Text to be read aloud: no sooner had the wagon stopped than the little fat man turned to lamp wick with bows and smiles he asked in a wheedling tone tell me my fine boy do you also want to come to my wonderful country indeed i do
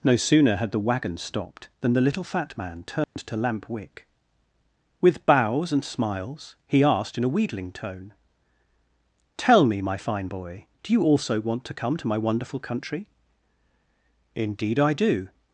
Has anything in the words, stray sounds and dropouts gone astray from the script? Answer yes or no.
yes